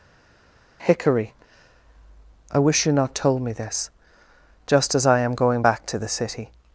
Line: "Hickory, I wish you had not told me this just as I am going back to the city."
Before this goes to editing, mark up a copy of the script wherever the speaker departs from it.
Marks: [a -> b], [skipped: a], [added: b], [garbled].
"Hickory, I wish you [skipped: had] not told me this just as I am going back to the city."